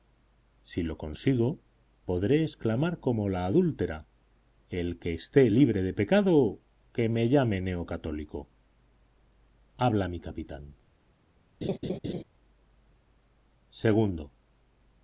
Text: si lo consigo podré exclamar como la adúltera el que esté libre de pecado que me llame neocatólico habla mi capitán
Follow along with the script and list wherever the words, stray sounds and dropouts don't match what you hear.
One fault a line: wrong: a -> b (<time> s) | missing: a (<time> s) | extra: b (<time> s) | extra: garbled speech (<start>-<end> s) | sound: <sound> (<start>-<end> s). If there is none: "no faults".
sound: laugh (11.6-12.2 s)